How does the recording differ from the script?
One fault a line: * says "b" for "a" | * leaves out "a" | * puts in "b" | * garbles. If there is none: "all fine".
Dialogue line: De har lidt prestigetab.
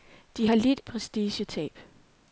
all fine